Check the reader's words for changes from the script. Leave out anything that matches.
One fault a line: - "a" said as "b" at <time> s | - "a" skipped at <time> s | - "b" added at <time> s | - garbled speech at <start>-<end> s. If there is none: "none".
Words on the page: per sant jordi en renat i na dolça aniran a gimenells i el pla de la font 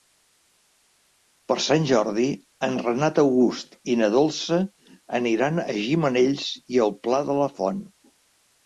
- "august" added at 3.2 s